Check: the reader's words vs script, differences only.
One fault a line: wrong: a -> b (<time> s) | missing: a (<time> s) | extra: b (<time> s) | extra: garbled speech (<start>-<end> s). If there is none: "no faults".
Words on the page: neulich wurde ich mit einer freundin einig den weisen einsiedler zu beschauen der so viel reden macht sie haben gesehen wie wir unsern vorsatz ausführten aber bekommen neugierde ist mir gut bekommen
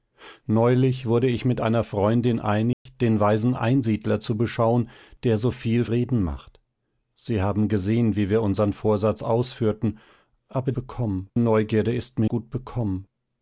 no faults